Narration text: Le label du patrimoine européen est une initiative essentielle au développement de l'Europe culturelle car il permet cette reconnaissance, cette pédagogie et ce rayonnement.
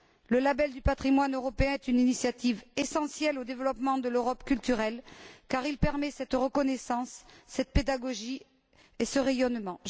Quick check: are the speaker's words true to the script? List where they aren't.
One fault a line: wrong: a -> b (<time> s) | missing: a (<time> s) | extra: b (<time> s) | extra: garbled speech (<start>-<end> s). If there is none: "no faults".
no faults